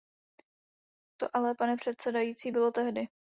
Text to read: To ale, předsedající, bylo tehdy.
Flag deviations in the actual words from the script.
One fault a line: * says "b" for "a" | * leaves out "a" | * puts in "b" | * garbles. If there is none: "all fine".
* puts in "pane"